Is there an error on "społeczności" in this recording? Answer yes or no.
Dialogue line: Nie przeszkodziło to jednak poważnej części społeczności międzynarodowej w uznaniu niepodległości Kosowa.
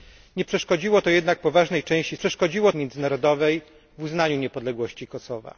yes